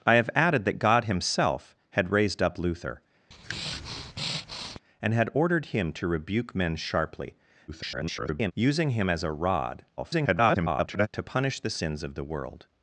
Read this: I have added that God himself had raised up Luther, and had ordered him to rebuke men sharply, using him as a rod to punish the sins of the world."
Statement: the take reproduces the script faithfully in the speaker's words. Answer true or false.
false